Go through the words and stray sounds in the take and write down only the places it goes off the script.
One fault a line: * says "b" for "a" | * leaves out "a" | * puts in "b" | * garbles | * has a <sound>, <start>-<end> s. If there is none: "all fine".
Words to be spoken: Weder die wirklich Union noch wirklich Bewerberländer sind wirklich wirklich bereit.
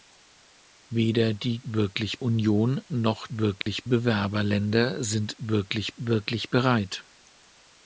* has a dropout, 3.6-3.7 s